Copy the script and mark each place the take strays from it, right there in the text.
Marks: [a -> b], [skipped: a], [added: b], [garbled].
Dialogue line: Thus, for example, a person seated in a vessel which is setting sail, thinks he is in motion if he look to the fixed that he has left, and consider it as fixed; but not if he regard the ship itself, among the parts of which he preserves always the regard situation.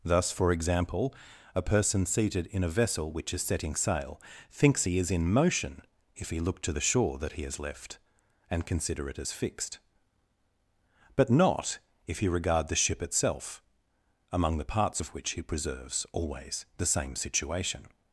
Thus, for example, a person seated in a vessel which is setting sail, thinks he is in motion if he look to the [fixed -> shore] that he has left, and consider it as fixed; but not if he regard the ship itself, among the parts of which he preserves always the [regard -> same] situation.